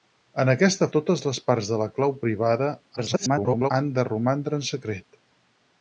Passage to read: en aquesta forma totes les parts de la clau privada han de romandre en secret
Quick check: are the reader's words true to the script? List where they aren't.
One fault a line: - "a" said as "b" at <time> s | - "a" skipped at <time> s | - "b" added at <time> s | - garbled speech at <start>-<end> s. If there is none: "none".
- "forma" skipped at 0.9 s
- garbled speech at 3.0-3.7 s